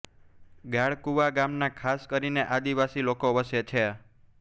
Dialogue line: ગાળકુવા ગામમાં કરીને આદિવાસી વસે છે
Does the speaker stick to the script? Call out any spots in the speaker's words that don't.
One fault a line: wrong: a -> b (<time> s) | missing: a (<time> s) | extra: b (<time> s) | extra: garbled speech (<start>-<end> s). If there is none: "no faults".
extra: ખાસ (1.8 s)
extra: લોકો (3.1 s)